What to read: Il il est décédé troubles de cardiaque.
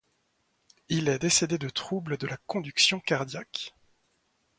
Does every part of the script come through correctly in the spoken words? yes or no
no